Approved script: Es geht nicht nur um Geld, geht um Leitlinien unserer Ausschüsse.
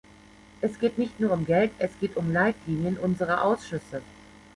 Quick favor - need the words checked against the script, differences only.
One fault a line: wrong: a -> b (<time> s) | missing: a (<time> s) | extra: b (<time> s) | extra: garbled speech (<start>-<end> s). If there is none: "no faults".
extra: es (1.8 s)